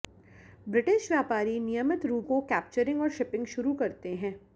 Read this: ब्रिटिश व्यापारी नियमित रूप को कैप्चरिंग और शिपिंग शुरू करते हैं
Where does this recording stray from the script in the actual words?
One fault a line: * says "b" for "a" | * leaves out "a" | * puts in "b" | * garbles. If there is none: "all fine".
all fine